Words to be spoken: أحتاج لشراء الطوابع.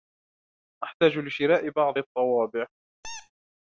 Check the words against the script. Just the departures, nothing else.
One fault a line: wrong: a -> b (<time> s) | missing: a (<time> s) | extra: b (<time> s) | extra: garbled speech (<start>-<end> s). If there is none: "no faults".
extra: بعض (1.7 s)